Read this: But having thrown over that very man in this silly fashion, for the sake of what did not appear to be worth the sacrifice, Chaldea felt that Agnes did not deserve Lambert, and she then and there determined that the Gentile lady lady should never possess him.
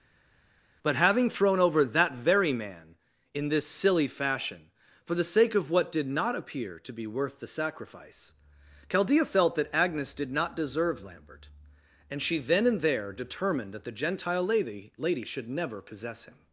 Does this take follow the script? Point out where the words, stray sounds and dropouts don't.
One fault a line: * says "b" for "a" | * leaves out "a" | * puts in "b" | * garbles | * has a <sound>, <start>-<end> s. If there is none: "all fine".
all fine